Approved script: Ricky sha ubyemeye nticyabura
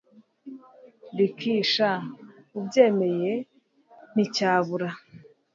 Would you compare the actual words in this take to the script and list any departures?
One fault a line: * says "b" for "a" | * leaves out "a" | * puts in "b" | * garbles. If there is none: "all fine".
all fine